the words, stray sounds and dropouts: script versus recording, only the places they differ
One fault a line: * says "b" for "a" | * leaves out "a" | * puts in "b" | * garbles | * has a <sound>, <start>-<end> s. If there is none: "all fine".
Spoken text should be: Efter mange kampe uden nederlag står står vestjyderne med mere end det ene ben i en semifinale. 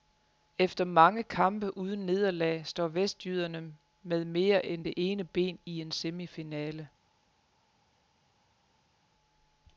* leaves out "står"